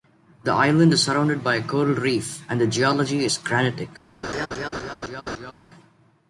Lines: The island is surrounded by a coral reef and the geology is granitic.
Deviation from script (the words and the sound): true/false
true